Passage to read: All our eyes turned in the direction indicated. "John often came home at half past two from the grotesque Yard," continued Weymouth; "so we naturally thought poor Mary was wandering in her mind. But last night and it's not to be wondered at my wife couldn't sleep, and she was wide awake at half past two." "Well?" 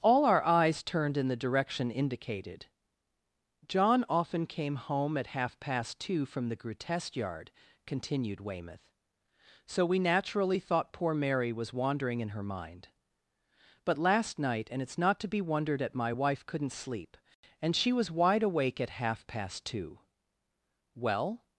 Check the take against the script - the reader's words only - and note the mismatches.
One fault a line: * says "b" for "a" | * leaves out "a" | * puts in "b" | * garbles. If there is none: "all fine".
all fine